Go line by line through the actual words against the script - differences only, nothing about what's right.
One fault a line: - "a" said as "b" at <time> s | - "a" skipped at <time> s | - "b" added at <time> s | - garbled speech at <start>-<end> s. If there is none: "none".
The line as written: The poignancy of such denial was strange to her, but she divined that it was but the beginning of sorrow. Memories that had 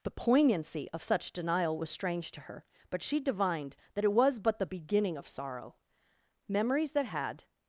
none